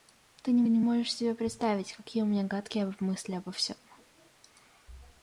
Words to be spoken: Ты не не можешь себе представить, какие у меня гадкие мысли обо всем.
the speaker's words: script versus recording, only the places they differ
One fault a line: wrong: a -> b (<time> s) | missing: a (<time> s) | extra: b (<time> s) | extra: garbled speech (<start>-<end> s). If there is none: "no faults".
no faults